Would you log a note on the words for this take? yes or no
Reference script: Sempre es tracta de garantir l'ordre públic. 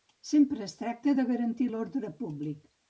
no